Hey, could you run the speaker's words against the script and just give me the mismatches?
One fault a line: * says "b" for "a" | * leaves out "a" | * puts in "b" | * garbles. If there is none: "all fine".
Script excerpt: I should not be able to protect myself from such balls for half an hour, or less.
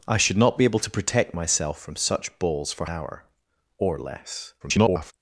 * leaves out "half an"
* garbles